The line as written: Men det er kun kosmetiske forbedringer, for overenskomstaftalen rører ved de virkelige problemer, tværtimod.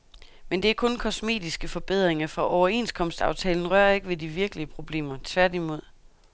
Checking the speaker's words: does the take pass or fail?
fail